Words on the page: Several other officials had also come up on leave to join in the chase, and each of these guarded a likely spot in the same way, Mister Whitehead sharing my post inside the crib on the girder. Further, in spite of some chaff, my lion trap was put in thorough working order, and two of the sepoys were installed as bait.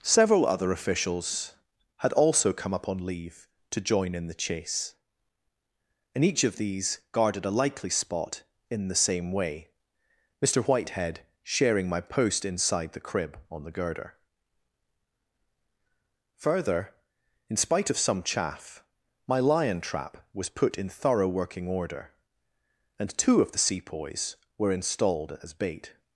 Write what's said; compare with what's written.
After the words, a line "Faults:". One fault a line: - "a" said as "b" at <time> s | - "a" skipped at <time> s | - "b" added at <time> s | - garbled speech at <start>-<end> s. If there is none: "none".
Several other officials had also come up on leave to join in the chase, and each of these guarded a likely spot in the same way, Mister Whitehead sharing my post inside the crib on the girder. Further, in spite of some chaff, my lion trap was put in thorough working order, and two of the sepoys were installed as bait.
Faults:
none